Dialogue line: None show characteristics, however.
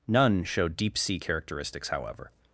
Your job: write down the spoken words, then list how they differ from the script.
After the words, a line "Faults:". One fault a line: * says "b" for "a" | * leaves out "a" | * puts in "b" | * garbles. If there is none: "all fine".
None show deep sea characteristics, however.
Faults:
* puts in "deep sea"